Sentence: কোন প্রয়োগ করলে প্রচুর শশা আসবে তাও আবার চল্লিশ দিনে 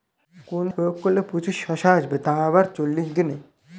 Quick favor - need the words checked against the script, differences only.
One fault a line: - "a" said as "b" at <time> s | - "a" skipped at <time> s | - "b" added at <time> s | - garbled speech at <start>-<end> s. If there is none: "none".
none